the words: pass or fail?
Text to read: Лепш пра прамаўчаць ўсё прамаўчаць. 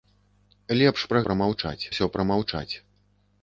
pass